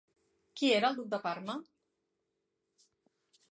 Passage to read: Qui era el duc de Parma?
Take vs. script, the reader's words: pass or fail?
pass